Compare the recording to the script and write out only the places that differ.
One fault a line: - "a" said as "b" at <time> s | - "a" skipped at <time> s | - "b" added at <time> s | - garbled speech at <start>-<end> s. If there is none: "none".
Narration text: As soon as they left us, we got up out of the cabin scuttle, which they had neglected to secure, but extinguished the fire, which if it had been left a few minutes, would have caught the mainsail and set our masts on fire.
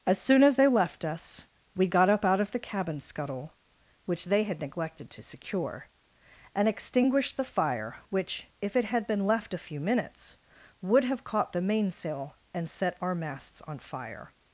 - "but" said as "and" at 6.6 s